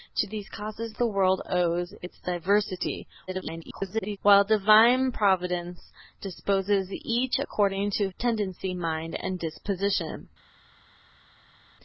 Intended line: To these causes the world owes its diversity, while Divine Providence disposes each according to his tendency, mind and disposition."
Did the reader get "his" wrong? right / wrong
wrong